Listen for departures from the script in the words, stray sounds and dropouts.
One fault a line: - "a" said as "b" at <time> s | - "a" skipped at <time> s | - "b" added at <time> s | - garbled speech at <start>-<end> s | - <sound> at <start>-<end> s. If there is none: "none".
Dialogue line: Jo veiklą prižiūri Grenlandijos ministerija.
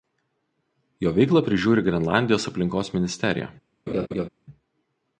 - "aplinkos" added at 2.5 s
- laugh at 3.9-4.3 s